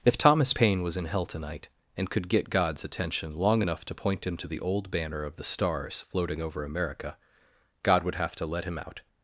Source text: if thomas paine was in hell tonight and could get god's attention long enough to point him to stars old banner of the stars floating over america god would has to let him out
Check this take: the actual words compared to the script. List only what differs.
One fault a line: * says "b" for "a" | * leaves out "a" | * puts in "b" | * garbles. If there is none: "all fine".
* says "the" for "stars"
* says "have" for "has"